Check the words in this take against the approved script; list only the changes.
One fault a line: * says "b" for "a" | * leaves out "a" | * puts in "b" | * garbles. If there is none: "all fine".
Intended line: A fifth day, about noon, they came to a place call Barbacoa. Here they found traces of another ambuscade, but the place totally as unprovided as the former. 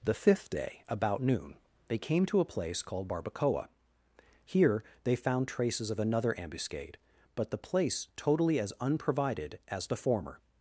* says "The" for "A"
* says "called" for "call"